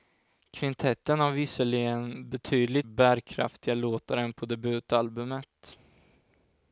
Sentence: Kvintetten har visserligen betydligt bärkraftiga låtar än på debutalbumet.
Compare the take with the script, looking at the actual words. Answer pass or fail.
pass